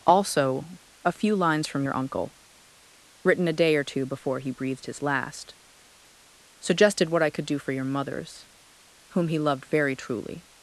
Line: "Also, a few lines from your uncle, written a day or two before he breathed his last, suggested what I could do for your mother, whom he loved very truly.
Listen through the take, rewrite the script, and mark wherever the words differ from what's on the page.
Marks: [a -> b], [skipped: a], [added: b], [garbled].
"Also, a few lines from your uncle, written a day or two before he breathed his last, suggested what I could do for your [mother, -> mothers] whom he loved very truly.